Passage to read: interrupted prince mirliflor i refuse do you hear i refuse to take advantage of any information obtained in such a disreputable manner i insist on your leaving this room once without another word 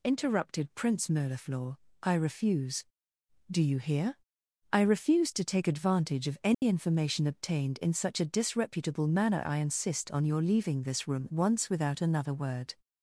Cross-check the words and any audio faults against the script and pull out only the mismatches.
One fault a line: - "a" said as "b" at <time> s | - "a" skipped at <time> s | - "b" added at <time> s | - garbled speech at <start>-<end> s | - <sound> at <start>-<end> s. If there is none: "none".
- dropout at 6.5-6.6 s